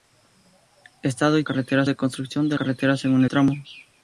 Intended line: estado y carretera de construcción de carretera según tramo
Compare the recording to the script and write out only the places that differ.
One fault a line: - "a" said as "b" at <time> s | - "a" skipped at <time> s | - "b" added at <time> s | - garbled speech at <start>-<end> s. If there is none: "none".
none